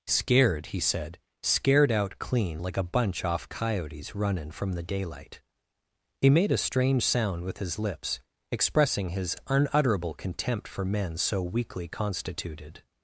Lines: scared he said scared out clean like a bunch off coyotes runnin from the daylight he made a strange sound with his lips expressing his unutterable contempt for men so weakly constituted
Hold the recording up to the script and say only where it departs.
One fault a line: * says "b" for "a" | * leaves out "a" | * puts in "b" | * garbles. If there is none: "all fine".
all fine